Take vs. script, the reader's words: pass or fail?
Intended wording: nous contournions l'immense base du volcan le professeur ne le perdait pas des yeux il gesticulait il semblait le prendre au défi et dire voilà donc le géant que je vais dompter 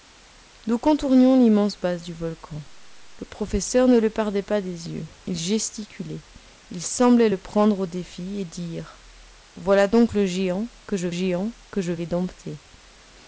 fail